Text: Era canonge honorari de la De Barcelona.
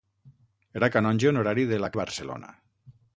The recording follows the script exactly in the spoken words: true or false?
true